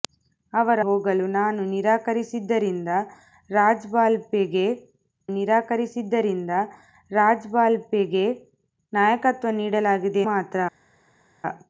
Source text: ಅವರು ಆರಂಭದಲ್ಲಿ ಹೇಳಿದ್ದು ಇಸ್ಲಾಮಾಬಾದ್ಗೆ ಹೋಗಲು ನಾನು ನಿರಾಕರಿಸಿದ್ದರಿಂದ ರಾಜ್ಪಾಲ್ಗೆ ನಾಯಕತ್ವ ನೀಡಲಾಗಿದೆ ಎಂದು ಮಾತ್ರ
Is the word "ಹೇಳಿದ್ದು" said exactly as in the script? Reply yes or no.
no